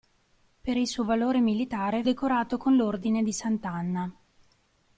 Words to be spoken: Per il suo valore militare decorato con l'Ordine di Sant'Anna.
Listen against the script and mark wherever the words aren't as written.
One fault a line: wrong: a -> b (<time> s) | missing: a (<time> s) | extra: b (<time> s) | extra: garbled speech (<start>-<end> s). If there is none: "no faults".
no faults